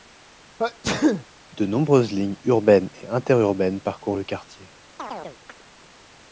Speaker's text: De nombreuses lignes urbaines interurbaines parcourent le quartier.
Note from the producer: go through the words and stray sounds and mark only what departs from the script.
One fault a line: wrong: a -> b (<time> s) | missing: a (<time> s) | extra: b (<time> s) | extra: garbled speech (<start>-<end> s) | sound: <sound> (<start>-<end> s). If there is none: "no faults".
sound: sneeze (0.6-1.2 s)
extra: et (2.9 s)
sound: chirp (5.0-5.6 s)